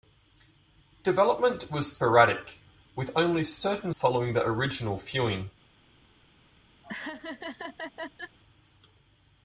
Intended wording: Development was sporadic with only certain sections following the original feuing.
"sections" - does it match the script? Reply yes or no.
no